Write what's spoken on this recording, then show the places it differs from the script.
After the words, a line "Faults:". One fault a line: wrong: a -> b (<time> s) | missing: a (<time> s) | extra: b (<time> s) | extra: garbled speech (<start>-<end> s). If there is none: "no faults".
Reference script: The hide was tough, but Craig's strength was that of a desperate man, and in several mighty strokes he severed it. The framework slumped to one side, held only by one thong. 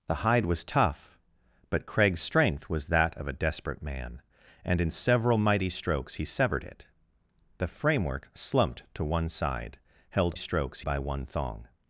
The hide was tough, but Craig's strength was that of a desperate man, and in several mighty strokes he severed it. The framework slumped to one side, held strokes by one thong.
Faults:
wrong: only -> strokes (10.3 s)